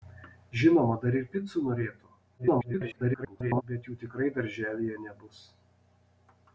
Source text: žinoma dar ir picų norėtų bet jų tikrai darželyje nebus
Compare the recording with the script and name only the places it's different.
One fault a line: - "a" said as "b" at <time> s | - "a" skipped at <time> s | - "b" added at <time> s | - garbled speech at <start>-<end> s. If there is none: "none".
- garbled speech at 2.4-3.6 s